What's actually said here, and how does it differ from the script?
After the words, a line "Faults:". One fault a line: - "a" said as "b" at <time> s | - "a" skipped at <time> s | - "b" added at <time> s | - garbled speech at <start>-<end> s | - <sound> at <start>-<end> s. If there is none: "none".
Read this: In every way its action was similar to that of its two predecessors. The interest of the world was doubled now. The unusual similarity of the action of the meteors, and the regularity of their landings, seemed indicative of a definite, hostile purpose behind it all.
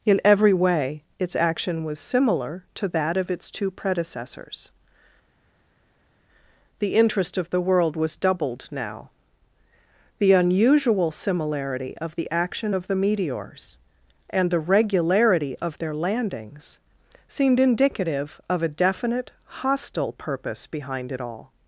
In every way its action was similar to that of its two predecessors. The interest of the world was doubled now. The unusual similarity of the action of the meteors, and the regularity of their landings, seemed indicative of a definite, hostile purpose behind it all.
Faults:
none